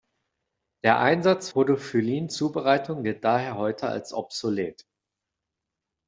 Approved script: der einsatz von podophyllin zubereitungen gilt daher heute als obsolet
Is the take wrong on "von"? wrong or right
wrong